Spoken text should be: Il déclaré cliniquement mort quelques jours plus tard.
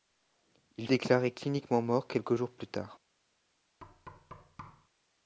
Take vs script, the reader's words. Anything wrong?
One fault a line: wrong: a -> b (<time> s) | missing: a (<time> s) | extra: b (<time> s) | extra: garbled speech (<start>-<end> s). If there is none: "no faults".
no faults